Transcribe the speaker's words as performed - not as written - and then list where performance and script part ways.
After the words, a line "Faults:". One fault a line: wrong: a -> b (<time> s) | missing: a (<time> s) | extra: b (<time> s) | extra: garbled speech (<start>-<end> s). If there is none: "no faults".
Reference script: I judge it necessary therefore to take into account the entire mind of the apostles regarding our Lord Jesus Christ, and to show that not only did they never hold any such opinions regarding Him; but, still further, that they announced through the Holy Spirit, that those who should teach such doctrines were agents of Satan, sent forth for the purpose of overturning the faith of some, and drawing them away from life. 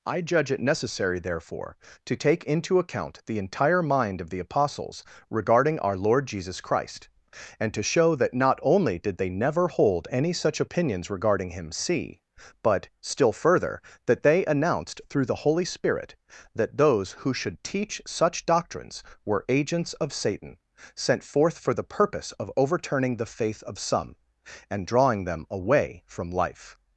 I judge it necessary therefore to take into account the entire mind of the apostles regarding our Lord Jesus Christ, and to show that not only did they never hold any such opinions regarding Him; see but, still further, that they announced through the Holy Spirit, that those who should teach such doctrines were agents of Satan, sent forth for the purpose of overturning the faith of some, and drawing them away from life.
Faults:
extra: see (11.7 s)